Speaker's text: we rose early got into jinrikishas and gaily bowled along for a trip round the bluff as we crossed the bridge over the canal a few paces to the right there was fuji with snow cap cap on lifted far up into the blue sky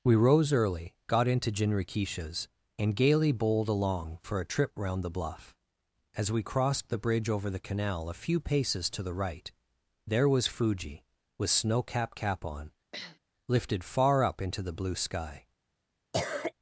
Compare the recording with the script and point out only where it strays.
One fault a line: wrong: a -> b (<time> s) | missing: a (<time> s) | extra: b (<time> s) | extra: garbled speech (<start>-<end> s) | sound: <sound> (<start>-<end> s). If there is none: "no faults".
sound: sniff (12.9-13.2 s)
sound: cough (16.1-16.5 s)